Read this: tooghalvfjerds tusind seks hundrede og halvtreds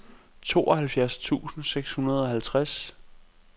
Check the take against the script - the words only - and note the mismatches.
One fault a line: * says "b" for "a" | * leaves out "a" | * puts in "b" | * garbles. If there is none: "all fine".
all fine